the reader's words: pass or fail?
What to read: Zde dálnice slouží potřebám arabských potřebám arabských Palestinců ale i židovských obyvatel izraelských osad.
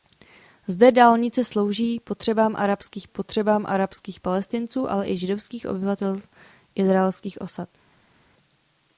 pass